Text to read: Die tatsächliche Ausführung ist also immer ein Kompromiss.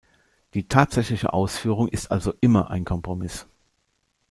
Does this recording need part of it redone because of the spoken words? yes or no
no